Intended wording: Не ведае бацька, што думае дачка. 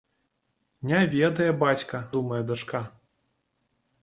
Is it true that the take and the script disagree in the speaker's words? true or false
true